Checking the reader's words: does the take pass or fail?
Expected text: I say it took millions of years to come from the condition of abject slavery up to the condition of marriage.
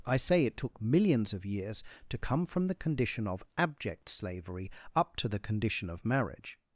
pass